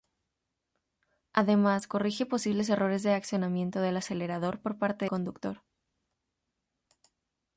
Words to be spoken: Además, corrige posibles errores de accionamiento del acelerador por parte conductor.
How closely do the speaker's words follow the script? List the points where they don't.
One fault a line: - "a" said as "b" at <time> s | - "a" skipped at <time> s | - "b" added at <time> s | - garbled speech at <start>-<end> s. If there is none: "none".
none